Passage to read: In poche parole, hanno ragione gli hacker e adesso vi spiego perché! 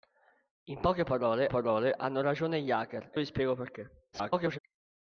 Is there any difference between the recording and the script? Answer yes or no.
yes